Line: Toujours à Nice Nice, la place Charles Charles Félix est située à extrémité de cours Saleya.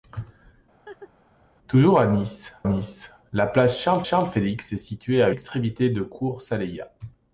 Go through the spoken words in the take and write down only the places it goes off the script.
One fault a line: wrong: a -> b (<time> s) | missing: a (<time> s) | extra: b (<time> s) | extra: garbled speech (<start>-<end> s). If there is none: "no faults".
no faults